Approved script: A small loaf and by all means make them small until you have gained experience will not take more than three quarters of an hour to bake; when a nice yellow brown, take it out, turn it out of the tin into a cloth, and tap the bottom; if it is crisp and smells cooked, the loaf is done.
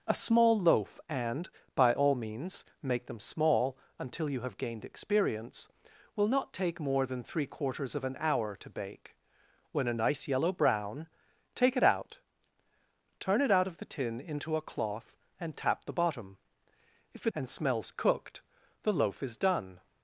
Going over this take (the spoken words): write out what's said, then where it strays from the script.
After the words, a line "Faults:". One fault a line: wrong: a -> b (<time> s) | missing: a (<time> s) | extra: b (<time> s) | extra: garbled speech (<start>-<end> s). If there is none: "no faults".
A small loaf and by all means make them small until you have gained experience will not take more than three quarters of an hour to bake; when a nice yellow brown, take it out, turn it out of the tin into a cloth, and tap the bottom; if it and smells cooked, the loaf is done.
Faults:
missing: is crisp (17.3 s)